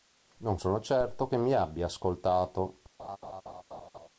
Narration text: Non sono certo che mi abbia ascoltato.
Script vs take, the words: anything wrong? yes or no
no